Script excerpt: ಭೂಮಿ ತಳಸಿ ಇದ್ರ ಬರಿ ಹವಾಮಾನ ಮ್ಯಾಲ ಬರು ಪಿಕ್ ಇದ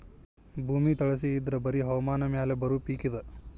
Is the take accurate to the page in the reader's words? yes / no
yes